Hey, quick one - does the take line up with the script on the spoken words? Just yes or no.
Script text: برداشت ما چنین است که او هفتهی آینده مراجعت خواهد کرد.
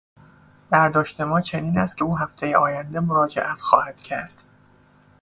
yes